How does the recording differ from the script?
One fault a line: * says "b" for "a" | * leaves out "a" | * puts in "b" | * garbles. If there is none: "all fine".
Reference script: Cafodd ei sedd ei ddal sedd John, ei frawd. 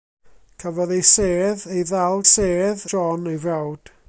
all fine